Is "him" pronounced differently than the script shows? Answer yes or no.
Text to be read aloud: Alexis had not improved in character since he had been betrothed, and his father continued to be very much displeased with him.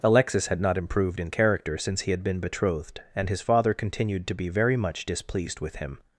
no